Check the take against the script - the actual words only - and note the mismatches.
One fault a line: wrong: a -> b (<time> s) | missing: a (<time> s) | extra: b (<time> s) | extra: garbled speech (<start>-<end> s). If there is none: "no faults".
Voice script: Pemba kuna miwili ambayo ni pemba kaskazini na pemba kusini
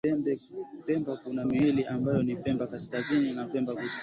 no faults